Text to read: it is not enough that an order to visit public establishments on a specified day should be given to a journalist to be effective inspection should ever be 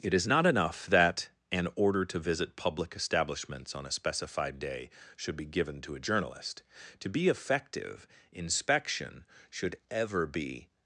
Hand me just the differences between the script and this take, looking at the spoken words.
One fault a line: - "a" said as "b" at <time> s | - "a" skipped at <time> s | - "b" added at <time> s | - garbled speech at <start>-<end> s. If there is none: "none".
none